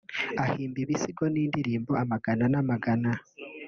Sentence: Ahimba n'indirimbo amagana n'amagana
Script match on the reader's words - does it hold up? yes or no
no